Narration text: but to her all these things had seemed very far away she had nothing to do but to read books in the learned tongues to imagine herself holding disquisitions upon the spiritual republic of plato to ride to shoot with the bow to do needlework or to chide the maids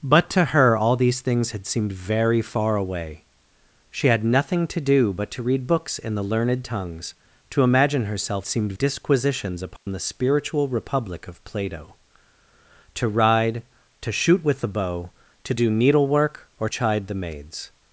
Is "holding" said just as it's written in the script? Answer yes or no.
no